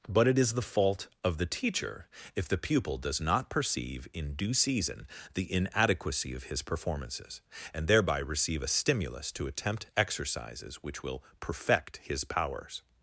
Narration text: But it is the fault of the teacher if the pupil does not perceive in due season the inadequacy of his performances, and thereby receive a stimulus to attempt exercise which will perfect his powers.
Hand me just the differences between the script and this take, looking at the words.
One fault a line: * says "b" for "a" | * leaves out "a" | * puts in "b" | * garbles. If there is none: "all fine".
* says "exercises" for "exercise"